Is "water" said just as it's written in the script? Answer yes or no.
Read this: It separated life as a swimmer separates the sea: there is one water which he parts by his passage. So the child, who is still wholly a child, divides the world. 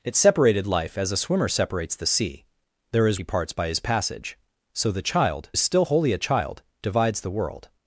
no